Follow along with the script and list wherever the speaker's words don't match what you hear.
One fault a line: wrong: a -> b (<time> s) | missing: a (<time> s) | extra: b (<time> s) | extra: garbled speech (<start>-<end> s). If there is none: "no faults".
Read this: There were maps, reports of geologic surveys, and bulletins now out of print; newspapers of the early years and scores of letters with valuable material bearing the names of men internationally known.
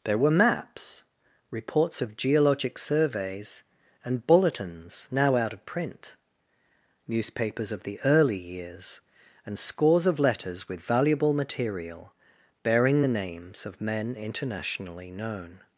no faults